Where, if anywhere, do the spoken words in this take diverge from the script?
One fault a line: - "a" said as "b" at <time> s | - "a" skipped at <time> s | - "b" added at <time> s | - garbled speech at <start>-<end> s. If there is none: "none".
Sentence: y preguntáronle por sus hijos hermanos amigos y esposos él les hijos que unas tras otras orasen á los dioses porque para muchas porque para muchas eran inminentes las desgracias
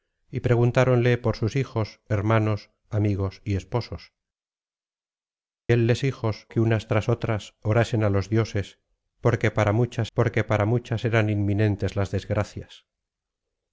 none